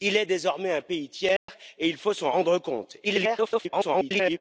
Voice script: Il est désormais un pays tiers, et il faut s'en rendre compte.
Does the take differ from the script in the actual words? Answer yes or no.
yes